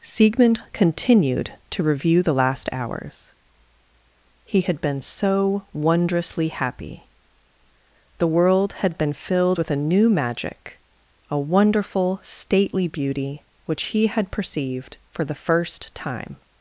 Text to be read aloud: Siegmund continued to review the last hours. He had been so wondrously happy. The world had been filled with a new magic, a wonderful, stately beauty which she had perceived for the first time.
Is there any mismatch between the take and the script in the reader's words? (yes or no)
yes